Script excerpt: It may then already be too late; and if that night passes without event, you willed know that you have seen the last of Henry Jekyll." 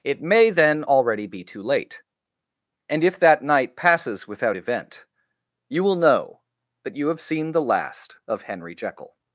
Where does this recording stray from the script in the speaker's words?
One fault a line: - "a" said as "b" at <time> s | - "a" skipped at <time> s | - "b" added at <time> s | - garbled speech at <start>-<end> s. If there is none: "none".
- "willed" said as "will" at 5.8 s